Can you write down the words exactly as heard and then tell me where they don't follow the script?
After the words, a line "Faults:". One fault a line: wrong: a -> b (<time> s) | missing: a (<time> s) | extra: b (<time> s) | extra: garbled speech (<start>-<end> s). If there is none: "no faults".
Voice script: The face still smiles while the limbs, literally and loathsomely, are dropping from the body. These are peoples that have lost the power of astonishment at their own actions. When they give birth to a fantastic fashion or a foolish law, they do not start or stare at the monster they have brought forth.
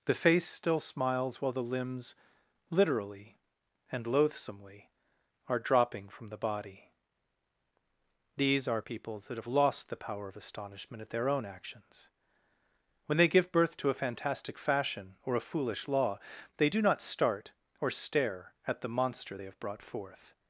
The face still smiles while the limbs, literally and loathsomely, are dropping from the body. These are peoples that have lost the power of astonishment at their own actions. When they give birth to a fantastic fashion or a foolish law, they do not start or stare at the monster they have brought forth.
Faults:
no faults